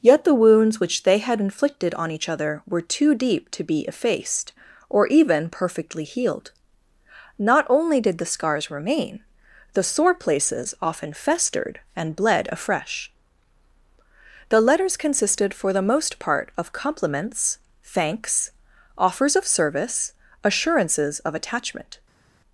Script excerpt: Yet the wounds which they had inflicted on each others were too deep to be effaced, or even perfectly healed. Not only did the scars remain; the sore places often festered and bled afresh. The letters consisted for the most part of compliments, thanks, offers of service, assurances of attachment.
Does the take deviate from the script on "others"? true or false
true